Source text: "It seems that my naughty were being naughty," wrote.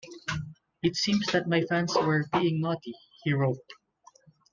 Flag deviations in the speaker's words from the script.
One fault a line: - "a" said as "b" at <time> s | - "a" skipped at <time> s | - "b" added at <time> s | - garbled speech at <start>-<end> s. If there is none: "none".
- "naughty" said as "fans" at 1.6 s
- "he" added at 3.2 s